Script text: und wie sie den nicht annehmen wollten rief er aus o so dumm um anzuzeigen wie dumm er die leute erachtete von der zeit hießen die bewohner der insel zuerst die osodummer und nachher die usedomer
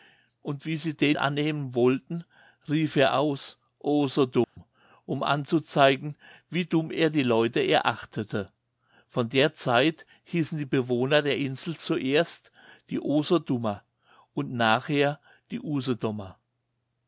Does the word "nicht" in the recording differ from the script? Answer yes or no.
yes